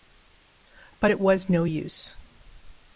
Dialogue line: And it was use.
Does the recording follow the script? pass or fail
fail